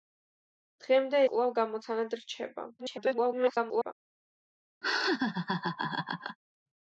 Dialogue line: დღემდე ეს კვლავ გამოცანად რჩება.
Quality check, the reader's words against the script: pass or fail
fail